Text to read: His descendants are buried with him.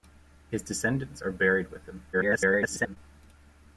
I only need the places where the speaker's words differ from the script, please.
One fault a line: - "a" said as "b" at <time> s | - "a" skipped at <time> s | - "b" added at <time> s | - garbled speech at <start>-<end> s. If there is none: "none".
- garbled speech at 2.1-3.0 s